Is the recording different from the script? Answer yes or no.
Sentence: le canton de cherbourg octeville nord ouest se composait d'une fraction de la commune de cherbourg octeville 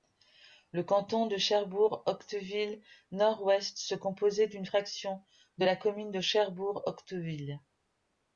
no